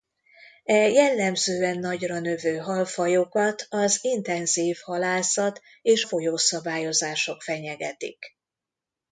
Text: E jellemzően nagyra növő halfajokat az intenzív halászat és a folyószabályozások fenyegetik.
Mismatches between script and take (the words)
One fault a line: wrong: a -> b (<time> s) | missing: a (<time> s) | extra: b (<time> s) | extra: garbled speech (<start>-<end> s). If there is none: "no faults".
missing: a (6.0 s)